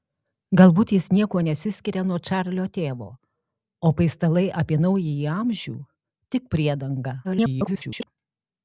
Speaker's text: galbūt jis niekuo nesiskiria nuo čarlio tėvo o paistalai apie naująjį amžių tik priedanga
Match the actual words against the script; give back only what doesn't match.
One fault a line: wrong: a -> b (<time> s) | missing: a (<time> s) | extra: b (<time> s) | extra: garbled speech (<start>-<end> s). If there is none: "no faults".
extra: garbled speech (7.2-8.1 s)